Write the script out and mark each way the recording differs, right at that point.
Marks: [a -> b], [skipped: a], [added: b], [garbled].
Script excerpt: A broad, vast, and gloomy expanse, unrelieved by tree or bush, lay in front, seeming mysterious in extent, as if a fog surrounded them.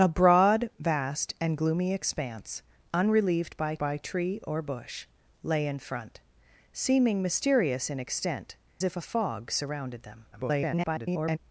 A broad, vast, and gloomy expanse, unrelieved by [added: by] tree or bush, lay in front, seeming mysterious in extent, [skipped: as] if a fog surrounded them. [garbled]